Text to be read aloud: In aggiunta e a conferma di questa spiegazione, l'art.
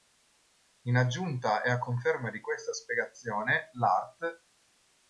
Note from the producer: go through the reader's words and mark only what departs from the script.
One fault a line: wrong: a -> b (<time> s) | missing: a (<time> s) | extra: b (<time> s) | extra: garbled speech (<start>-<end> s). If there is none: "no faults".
no faults